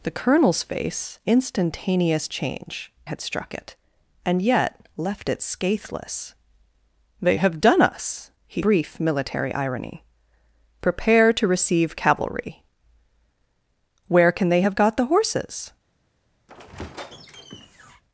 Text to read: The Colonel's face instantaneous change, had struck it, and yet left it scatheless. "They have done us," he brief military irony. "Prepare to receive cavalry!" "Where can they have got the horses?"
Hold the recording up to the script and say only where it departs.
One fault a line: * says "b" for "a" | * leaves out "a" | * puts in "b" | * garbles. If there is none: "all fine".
all fine